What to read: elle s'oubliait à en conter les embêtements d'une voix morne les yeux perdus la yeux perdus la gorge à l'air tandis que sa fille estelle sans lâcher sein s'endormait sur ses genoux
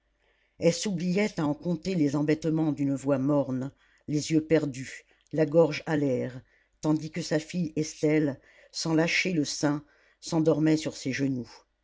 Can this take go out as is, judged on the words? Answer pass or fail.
fail